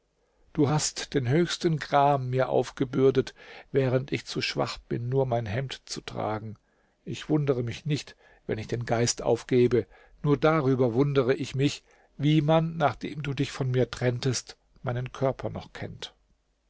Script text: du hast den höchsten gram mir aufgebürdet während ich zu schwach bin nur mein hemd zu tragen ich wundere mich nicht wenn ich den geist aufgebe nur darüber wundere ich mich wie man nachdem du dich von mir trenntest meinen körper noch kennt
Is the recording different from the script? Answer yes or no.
no